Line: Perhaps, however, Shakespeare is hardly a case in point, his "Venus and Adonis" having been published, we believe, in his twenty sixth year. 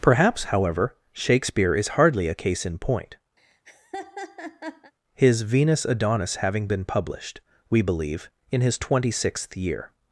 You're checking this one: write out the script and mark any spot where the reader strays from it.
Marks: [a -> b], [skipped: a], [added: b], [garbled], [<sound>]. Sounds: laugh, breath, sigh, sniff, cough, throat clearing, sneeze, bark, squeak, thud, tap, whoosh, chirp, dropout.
Perhaps, however, Shakespeare is hardly a case in point, [laugh] his "Venus [skipped: and] Adonis" having been published, we believe, in his twenty sixth year.